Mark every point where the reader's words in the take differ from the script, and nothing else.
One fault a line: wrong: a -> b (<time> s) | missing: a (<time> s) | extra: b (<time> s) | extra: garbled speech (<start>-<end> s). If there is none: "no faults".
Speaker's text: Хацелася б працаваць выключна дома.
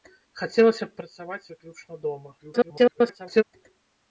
extra: garbled speech (2.4-3.4 s)